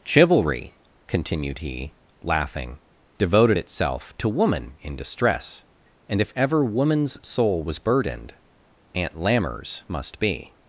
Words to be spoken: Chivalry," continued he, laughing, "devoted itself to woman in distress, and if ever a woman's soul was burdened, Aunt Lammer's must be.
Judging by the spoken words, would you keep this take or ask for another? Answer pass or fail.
fail